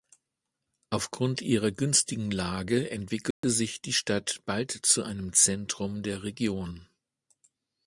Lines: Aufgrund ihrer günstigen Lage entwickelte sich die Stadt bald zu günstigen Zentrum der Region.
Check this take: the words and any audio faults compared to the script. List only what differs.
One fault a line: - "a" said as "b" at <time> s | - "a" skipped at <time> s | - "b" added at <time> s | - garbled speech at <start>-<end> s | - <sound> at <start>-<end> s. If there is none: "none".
- dropout at 3.3-3.4 s
- "günstigen" said as "einem" at 5.0 s